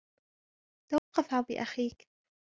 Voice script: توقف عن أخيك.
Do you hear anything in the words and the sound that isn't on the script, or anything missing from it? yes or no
yes